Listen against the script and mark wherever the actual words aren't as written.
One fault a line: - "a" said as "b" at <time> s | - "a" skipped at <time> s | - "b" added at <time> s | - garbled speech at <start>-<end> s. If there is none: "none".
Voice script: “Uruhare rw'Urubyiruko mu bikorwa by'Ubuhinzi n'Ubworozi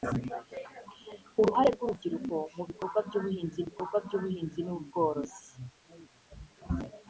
- "bikorwa by'Ubuhinzi" added at 3.7 s